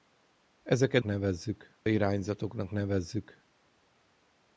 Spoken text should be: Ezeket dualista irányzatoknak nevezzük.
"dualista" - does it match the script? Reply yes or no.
no